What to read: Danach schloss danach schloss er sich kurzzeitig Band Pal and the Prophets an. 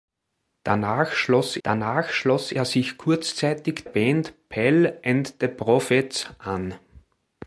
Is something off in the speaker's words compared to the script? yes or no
no